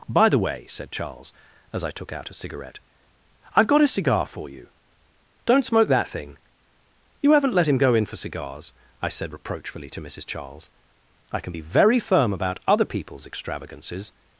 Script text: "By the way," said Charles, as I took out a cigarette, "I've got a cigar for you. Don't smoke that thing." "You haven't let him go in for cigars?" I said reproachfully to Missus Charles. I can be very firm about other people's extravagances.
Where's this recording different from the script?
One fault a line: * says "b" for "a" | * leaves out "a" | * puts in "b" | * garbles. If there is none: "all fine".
all fine